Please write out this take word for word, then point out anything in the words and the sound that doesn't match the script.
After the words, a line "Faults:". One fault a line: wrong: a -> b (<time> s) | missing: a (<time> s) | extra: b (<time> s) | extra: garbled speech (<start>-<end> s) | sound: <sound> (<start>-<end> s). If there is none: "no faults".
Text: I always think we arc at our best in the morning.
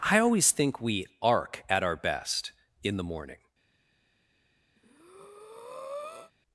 I always think we arc at our best in the morning.
Faults:
sound: breath (4.8-6.3 s)